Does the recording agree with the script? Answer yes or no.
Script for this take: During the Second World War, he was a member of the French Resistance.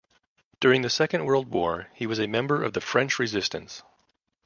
yes